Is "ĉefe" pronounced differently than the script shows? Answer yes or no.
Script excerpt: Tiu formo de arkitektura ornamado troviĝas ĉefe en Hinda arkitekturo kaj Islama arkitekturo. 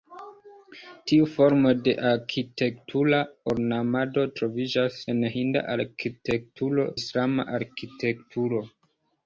yes